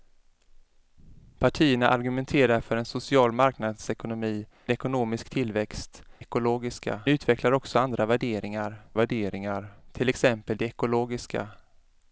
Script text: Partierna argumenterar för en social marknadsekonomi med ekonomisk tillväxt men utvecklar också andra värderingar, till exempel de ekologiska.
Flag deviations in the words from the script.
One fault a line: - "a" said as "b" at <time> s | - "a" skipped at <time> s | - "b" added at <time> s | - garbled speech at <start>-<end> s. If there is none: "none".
- "med" skipped at 4.5 s
- "men" said as "ekologiska" at 6.2 s
- "värderingar" added at 8.9 s